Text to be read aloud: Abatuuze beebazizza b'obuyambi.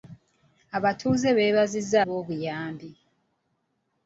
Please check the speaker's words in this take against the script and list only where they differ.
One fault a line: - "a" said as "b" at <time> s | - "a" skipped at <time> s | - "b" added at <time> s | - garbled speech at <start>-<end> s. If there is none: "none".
none